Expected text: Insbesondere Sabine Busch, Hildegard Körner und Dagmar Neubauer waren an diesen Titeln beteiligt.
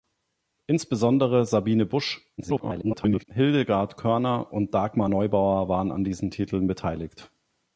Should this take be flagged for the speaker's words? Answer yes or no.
yes